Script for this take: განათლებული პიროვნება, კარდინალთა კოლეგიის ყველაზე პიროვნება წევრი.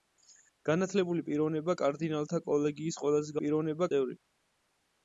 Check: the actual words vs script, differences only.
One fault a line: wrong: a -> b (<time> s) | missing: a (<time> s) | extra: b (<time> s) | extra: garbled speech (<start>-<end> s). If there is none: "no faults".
no faults